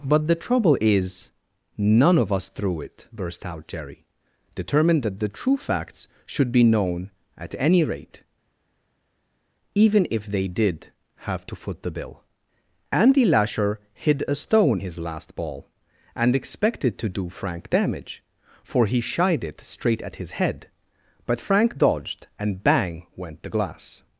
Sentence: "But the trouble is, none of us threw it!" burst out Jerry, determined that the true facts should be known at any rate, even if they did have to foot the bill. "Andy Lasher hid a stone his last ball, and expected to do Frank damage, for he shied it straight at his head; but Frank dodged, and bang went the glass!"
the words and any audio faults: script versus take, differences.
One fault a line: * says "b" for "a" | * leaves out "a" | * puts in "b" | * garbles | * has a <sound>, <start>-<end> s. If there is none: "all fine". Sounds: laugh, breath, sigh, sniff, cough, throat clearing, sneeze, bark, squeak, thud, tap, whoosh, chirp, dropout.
all fine